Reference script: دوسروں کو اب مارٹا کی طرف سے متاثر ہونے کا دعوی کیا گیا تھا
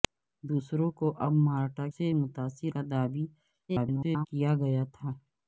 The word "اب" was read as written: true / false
true